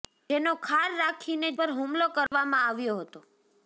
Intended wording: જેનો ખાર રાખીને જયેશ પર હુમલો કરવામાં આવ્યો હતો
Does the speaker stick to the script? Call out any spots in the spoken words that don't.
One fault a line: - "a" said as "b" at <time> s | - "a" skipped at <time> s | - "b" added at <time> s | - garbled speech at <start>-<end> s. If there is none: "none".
- "જયેશ" skipped at 1.5 s